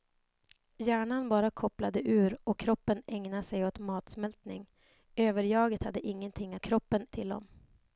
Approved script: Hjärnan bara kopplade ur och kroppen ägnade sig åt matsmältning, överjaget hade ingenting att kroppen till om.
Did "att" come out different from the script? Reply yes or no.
no